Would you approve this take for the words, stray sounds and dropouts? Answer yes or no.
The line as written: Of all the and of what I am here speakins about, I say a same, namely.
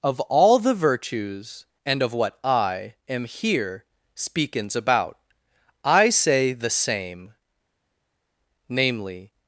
no